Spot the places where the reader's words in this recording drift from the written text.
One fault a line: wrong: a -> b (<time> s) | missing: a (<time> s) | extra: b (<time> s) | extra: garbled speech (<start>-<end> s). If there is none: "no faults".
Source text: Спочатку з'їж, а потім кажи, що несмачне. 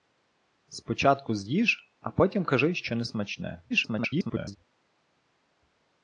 extra: garbled speech (3.7-4.6 s)